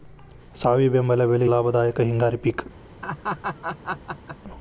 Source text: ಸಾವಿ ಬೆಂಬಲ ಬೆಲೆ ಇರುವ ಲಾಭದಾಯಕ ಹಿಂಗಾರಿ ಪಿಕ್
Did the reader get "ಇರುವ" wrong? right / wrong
wrong